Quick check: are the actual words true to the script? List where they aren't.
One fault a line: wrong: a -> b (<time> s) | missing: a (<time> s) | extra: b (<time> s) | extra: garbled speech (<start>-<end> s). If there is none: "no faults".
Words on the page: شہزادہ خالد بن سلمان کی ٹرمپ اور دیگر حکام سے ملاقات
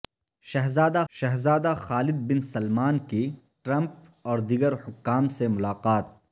extra: شہزادہ (1.1 s)